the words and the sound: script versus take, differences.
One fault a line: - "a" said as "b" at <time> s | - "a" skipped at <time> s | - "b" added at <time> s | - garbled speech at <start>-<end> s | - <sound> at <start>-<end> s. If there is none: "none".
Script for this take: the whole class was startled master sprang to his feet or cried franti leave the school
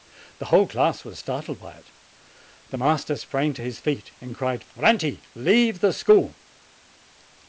- "by it the" added at 1.6 s
- "or" said as "and" at 4.2 s